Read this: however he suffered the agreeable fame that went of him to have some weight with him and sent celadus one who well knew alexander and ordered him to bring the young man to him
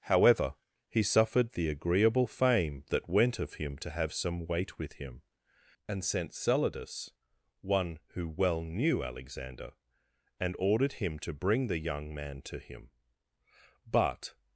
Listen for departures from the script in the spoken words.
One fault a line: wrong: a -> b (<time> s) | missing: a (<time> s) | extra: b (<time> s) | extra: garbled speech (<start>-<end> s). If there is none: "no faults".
extra: but (13.9 s)